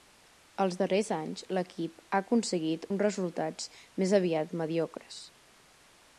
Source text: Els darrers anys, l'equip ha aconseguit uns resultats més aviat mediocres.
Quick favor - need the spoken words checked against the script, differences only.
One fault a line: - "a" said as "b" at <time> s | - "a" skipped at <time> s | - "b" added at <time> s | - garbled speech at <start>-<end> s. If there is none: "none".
none